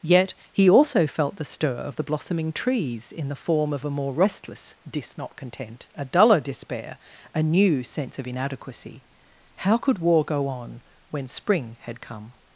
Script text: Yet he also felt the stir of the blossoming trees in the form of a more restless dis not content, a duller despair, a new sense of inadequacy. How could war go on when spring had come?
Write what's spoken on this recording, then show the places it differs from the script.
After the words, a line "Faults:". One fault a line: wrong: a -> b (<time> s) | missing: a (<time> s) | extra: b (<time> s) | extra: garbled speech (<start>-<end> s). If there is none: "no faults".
Yet he also felt the stir of the blossoming trees in the form of a more restless dis not content, a duller despair, a new sense of inadequacy. How could war go on when spring had come?
Faults:
no faults